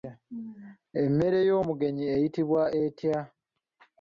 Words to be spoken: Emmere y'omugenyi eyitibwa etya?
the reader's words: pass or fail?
pass